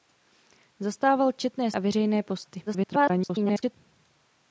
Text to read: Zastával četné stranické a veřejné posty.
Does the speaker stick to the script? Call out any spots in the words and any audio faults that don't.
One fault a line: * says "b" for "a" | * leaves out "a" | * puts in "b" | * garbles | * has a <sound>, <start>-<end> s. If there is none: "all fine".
* leaves out "stranické"
* garbles